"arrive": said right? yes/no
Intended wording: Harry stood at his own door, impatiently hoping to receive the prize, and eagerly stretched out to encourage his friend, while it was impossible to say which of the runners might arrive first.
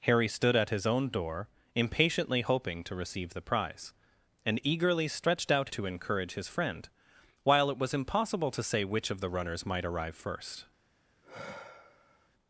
yes